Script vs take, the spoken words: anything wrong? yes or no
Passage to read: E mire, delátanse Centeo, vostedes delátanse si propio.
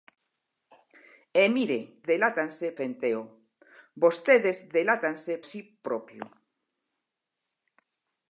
no